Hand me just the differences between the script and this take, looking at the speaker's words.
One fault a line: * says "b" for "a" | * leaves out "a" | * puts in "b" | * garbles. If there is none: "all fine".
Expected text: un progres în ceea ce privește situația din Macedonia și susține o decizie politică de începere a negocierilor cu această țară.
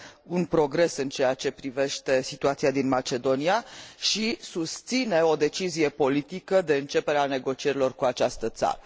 all fine